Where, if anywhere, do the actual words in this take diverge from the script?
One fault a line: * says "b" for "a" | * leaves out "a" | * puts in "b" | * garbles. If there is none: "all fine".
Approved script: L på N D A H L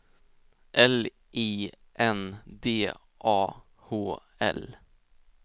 * says "I" for "på"